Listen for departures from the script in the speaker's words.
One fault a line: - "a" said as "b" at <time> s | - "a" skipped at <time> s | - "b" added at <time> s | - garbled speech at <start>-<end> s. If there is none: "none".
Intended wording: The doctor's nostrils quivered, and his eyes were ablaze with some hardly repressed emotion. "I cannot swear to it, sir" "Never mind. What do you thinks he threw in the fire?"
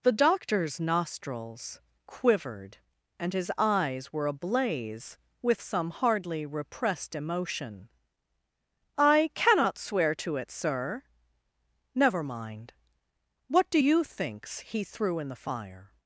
none